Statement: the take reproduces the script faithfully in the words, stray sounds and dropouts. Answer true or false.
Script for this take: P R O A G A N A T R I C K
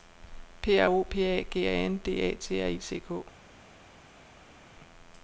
false